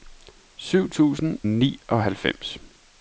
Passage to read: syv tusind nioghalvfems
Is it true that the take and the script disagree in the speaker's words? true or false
false